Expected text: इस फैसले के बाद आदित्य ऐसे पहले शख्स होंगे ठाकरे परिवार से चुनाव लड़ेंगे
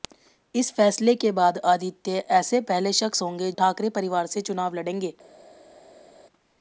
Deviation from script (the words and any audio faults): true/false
false